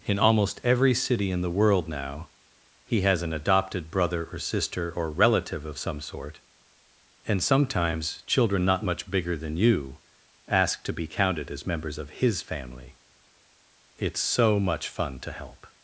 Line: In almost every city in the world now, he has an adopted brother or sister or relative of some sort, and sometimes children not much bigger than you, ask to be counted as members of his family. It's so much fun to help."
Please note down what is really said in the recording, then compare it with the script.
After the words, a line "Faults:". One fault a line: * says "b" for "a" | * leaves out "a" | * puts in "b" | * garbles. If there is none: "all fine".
In almost every city in the world now, he has an adopted brother or sister or relative of some sort, and sometimes children not much bigger than you, ask to be counted as members of his family. It's so much fun to help."
Faults:
all fine